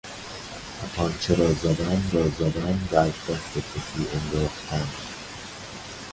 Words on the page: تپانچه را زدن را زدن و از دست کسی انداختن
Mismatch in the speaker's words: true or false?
false